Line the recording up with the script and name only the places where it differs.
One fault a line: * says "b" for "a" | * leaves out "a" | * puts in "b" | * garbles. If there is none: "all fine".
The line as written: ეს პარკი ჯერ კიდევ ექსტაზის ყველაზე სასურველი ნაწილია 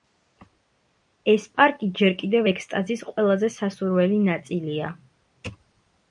all fine